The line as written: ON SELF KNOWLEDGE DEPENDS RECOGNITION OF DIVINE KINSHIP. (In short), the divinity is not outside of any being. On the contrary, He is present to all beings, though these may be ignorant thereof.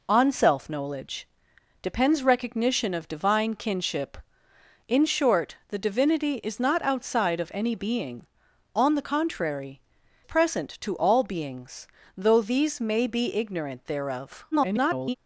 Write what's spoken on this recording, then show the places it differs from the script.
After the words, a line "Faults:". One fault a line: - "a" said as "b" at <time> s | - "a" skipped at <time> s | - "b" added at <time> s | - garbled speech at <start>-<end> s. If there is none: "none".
ON SELF KNOWLEDGE DEPENDS RECOGNITION OF DIVINE KINSHIP. (In short), the divinity is not outside of any being. On the contrary, Present to all beings, though these may be ignorant thereof. [garbled]
Faults:
- "He is" skipped at 9.8 s
- garbled speech at 14.5-15.2 s